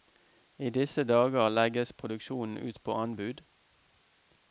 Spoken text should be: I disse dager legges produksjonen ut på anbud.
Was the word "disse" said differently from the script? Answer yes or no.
no